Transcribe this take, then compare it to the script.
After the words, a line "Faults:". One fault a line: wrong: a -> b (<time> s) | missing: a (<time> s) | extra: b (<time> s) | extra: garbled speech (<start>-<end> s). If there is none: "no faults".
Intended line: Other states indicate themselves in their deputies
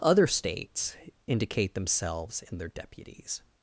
Other states indicate themselves in their deputies
Faults:
no faults